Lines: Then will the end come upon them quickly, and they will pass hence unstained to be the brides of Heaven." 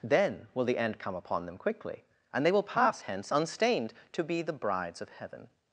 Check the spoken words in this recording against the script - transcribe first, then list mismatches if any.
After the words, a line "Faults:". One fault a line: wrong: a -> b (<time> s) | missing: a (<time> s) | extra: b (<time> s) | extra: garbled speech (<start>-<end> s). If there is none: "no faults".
Then will the end come upon them quickly, and they will pass hence unstained to be the brides of Heaven."
Faults:
no faults